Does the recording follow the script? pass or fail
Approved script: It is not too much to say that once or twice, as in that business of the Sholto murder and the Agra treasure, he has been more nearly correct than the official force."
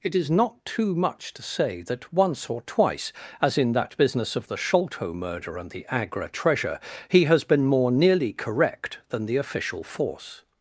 pass